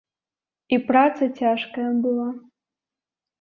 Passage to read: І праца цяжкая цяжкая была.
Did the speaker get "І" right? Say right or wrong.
right